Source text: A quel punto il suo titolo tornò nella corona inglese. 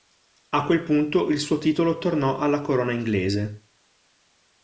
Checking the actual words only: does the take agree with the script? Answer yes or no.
no